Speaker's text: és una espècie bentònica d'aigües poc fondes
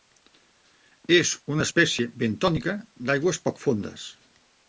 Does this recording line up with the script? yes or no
yes